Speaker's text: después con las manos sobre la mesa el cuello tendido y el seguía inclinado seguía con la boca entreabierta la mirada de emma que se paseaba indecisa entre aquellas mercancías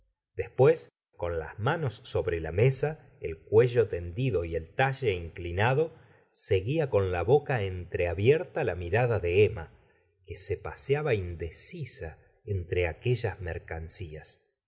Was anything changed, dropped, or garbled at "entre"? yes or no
no